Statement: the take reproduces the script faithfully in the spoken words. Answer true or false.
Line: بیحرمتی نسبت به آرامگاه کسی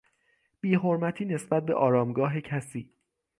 true